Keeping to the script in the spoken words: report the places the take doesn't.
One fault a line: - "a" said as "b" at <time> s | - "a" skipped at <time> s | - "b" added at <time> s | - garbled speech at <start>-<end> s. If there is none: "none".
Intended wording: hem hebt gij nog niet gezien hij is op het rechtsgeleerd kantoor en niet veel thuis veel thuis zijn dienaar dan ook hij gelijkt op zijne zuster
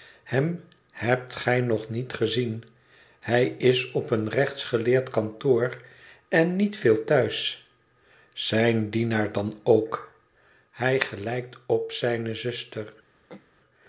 - "het" said as "een" at 4.1 s
- "veel thuis" skipped at 7.7 s